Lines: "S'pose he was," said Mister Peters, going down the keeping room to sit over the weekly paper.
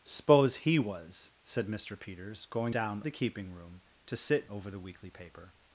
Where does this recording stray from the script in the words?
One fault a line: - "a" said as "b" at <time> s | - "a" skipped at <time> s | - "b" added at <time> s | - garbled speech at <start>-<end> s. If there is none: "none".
none